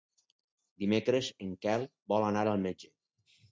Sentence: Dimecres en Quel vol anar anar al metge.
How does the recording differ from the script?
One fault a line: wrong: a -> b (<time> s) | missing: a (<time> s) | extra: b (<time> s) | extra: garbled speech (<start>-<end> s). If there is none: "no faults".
missing: anar (2.5 s)